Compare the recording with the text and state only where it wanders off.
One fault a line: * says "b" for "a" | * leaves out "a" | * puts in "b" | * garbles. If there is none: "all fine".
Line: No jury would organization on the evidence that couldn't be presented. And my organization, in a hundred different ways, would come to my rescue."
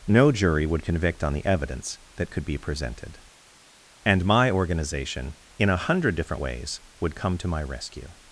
* says "convict" for "organization"
* says "could" for "couldn't"